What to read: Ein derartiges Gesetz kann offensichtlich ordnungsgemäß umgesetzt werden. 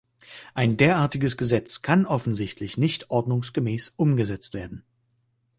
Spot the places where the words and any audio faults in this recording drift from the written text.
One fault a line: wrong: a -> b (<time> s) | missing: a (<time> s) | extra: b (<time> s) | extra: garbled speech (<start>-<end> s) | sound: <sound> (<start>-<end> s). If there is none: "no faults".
extra: nicht (2.8 s)